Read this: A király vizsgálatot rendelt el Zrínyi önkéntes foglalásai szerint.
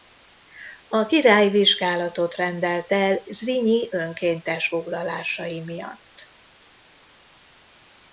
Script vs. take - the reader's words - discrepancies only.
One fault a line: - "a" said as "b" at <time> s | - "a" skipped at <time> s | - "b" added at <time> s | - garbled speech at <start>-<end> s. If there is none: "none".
- "szerint" said as "miatt" at 5.6 s